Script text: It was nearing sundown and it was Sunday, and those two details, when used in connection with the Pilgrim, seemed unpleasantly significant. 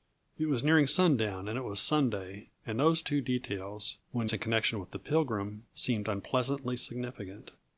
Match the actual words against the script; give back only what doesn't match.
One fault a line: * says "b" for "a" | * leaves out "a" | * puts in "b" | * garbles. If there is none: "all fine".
* leaves out "used"